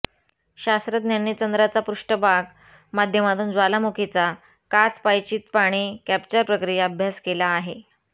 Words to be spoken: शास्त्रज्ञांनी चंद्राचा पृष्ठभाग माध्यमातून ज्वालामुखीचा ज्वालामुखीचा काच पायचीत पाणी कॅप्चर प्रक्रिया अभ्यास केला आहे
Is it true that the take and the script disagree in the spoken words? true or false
true